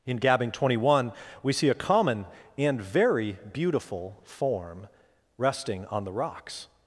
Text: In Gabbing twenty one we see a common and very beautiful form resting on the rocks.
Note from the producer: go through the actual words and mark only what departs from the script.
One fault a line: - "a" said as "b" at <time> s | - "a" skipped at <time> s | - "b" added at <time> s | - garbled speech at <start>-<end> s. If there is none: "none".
none